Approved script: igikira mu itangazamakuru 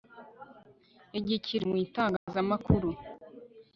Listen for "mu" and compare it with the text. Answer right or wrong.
right